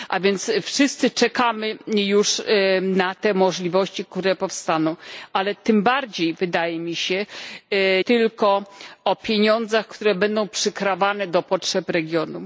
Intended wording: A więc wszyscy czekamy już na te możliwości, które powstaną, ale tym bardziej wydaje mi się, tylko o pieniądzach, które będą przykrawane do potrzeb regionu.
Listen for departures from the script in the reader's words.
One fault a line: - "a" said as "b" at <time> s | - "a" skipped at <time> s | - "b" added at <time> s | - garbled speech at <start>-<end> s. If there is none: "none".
none